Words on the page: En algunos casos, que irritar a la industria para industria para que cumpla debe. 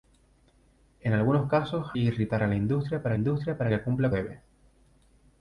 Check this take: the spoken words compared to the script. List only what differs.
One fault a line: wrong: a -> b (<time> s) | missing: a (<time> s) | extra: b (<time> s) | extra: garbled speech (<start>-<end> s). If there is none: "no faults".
no faults